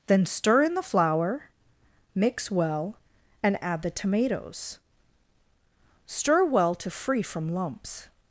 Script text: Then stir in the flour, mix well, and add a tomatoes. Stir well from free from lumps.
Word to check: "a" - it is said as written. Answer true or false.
false